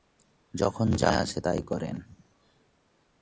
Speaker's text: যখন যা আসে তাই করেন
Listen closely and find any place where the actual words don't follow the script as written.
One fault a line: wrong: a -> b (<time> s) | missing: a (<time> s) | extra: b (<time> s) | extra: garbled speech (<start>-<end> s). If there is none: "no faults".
no faults